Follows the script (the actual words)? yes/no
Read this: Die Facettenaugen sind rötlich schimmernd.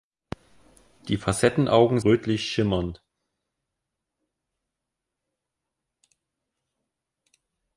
no